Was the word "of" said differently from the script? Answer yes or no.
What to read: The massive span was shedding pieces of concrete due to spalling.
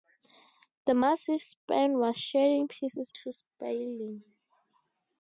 yes